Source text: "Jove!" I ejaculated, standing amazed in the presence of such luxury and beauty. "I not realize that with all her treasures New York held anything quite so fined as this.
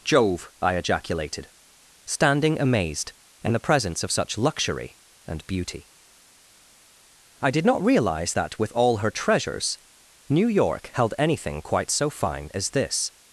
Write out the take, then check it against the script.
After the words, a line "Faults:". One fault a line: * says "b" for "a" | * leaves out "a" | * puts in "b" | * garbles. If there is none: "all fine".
"Jove!" I ejaculated, standing amazed in the presence of such luxury and beauty. "I did not realize that with all her treasures New York held anything quite so fine as this.
Faults:
* puts in "did"
* says "fine" for "fined"